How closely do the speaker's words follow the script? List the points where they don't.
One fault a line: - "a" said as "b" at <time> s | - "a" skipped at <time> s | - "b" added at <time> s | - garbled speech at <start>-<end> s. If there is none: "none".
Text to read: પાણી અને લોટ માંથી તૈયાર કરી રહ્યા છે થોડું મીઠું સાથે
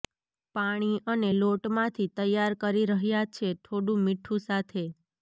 none